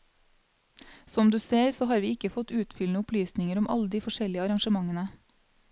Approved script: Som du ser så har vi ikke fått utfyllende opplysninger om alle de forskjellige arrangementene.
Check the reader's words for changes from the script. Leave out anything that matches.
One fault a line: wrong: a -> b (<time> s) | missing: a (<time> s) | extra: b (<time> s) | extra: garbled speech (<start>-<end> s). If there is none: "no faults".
no faults